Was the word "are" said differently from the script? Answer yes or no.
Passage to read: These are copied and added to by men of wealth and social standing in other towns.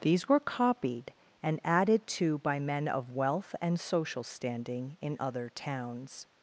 yes